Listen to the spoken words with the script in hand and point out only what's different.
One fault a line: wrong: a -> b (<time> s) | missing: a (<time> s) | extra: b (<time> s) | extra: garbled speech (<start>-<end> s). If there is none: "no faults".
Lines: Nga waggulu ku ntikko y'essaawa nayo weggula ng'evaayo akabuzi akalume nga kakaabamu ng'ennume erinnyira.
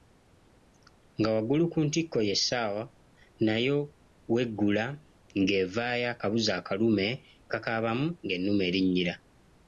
missing: nga (7.1 s)